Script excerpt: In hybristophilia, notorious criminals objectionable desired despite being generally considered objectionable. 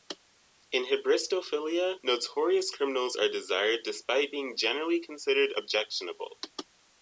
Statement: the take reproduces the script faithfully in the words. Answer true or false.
false